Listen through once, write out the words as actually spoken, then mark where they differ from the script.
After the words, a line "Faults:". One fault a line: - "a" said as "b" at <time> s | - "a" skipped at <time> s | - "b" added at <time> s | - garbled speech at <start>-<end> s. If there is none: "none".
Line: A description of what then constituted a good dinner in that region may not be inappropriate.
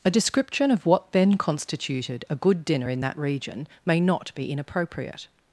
A description of what then constituted a good dinner in that region may not be inappropriate.
Faults:
none